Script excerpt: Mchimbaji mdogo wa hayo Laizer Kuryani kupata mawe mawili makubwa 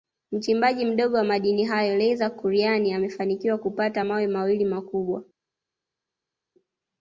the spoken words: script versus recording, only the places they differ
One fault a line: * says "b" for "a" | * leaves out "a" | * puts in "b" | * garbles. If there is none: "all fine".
* puts in "madini"
* puts in "amefanikiwa"